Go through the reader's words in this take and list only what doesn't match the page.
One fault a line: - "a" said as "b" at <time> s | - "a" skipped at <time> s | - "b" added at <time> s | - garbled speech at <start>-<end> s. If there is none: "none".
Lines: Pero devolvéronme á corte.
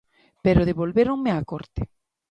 none